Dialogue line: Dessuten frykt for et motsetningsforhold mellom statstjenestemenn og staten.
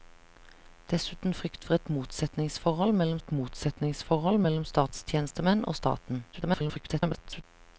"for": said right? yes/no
yes